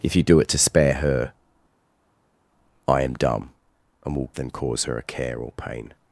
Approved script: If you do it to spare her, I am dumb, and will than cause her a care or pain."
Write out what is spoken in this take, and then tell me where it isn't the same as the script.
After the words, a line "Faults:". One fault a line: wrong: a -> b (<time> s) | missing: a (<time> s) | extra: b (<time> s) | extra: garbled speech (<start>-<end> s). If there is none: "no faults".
If you do it to spare her, I am dumb, and will than cause her a care or pain."
Faults:
no faults